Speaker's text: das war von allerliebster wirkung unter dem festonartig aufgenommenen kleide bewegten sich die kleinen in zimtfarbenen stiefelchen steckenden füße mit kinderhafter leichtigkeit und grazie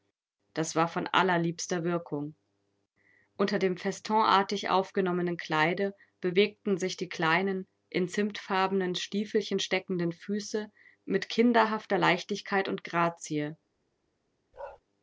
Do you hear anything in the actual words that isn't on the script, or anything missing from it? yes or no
no